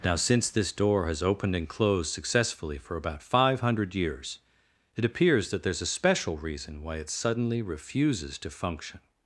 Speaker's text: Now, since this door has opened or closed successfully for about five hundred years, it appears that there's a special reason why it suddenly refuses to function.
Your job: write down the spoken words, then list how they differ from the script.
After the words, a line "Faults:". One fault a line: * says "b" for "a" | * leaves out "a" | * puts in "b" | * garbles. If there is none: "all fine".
Now, since this door has opened and closed successfully for about five hundred years, it appears that there's a special reason why it suddenly refuses to function.
Faults:
* says "and" for "or"